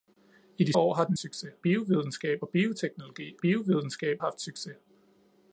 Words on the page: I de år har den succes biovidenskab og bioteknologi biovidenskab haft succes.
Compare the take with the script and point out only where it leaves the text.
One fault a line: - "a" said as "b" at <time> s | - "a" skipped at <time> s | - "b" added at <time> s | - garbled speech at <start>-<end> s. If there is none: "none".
none